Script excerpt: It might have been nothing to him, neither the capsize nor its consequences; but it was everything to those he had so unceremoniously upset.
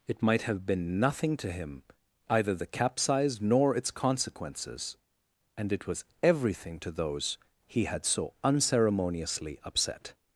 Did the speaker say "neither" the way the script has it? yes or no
no